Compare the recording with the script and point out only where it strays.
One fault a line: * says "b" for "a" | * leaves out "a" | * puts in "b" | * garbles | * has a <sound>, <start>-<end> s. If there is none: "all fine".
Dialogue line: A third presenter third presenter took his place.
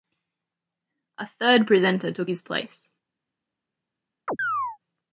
* leaves out "third presenter"
* has a chirp, 4.3-4.8 s